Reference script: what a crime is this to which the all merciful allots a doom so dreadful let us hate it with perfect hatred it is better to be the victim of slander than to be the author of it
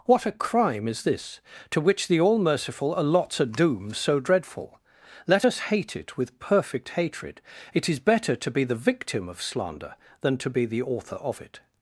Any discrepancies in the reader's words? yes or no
no